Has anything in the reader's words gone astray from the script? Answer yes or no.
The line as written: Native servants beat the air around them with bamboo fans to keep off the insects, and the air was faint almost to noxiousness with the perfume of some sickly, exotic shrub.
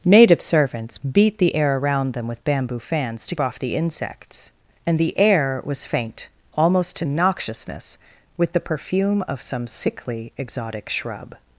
yes